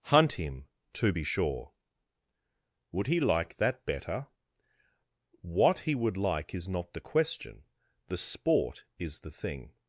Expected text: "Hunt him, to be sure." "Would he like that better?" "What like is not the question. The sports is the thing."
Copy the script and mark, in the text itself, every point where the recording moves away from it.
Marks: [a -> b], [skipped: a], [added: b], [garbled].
"Hunt him, to be sure." "Would he like that better?" "What [added: he would] like is not the question. The [sports -> sport] is the thing."